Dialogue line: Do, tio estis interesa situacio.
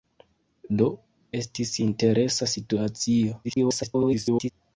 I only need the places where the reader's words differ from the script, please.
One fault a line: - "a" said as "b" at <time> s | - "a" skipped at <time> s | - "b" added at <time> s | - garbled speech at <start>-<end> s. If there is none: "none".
- "tio" skipped at 0.9 s
- garbled speech at 3.4-4.5 s